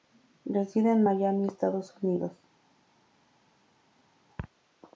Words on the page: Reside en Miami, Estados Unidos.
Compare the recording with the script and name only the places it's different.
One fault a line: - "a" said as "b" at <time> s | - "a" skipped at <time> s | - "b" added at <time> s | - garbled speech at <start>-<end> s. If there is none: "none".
none